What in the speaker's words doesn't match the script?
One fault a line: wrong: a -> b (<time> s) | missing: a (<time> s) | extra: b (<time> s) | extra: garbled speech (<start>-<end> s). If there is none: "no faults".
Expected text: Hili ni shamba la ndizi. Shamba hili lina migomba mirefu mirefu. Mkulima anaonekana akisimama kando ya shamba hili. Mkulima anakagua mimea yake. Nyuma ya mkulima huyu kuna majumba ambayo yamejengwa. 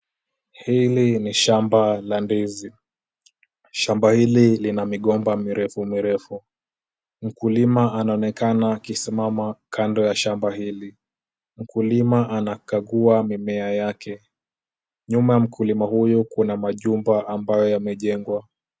no faults